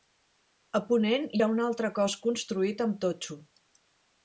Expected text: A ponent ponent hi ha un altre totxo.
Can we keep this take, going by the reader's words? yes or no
no